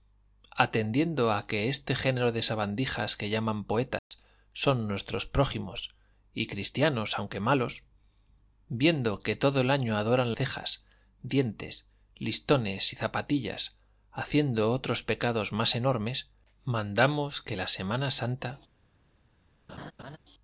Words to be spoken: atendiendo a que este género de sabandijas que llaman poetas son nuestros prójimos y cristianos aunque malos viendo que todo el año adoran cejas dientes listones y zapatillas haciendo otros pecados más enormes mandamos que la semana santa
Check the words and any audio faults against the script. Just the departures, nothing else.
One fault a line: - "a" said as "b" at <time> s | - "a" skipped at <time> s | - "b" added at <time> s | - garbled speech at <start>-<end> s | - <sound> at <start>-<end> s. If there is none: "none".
- dropout at 4.0-4.1 s
- laugh at 19.7-20.2 s